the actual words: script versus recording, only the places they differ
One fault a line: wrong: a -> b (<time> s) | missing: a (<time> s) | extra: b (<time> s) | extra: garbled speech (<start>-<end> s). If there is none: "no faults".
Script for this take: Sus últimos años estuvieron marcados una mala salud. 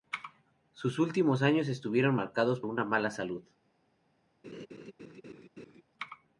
no faults